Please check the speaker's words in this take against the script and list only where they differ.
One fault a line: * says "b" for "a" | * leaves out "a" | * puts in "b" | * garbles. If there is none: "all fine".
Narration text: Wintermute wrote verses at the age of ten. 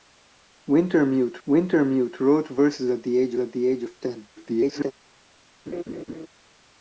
* puts in "wintermute"
* puts in "at the age"
* garbles